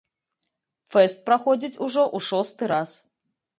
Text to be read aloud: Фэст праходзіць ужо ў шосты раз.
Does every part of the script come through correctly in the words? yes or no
yes